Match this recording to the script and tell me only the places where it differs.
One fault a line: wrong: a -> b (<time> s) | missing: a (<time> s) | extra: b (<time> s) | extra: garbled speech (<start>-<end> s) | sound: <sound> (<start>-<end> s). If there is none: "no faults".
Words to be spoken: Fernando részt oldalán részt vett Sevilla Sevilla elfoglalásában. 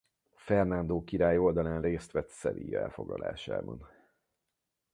wrong: részt -> király (1.0 s)
missing: Sevilla (2.8 s)